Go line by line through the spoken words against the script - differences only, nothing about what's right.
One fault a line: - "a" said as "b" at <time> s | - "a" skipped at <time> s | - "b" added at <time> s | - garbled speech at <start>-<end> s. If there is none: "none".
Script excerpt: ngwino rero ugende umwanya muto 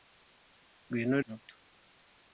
- "rero ugende umwanya" skipped at 1.2 s